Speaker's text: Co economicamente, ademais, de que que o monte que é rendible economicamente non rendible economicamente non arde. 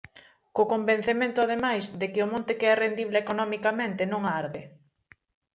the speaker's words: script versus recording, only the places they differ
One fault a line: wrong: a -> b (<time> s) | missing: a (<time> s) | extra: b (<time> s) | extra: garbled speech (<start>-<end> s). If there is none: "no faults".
wrong: economicamente -> convencemento (0.7 s)
missing: que (2.2 s)
missing: rendible economicamente non (4.2 s)